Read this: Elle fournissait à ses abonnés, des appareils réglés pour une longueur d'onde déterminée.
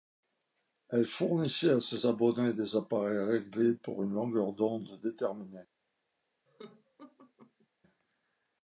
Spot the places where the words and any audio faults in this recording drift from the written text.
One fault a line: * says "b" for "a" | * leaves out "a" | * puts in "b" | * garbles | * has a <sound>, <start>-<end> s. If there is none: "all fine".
* has a laugh, 6.5-7.7 s